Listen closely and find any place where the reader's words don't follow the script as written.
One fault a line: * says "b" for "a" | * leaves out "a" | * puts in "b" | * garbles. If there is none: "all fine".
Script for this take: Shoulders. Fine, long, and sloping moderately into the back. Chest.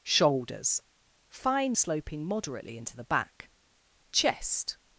* leaves out "long and"